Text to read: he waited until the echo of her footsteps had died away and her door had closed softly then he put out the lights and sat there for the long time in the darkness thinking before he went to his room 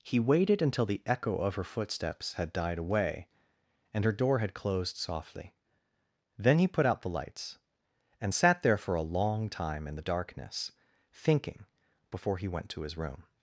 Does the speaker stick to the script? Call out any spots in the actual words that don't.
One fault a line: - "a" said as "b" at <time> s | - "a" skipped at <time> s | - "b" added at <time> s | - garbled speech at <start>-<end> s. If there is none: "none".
- "the" said as "a" at 8.9 s